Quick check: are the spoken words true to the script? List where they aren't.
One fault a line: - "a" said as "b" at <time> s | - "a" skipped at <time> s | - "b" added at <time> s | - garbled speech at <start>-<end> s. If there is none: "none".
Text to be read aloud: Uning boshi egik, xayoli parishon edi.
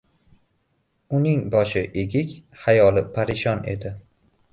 none